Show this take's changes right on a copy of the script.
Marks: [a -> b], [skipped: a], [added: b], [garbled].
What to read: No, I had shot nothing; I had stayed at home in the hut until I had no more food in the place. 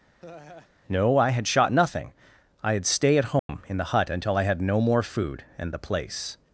No, I had shot nothing; I had [stayed -> stay] at home in the hut until I had no more food [in -> and] the place.